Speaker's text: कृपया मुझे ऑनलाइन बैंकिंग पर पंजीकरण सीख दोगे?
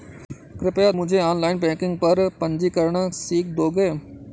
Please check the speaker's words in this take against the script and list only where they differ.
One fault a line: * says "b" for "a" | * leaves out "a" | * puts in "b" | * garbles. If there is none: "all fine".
all fine